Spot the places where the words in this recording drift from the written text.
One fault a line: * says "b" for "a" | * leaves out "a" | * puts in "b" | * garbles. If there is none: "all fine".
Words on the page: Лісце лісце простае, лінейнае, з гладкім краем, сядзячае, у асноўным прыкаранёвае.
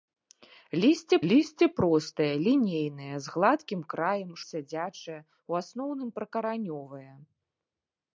all fine